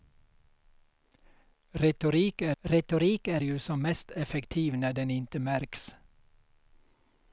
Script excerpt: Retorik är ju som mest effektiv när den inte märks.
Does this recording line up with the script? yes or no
no